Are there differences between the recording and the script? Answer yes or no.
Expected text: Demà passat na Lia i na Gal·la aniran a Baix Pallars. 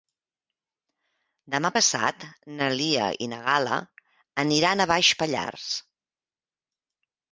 no